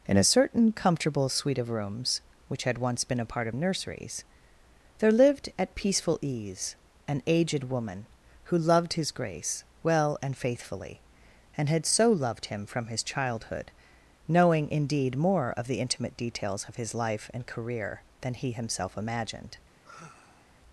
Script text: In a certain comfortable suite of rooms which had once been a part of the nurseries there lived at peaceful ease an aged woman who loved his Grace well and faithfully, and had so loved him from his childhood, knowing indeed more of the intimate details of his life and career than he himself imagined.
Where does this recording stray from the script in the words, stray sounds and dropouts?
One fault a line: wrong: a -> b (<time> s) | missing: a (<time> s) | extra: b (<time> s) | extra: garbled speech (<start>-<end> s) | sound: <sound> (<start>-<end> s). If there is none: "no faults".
missing: the (3.5 s)
sound: sigh (19.8-20.5 s)